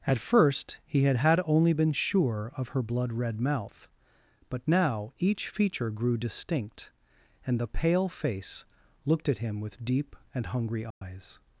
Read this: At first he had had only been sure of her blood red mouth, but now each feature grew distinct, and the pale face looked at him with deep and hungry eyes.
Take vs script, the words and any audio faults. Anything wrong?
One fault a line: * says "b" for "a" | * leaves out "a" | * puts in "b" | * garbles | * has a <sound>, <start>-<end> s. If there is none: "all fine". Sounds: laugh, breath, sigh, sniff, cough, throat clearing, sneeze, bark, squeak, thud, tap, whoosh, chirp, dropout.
* has a dropout, 10.9-11.0 s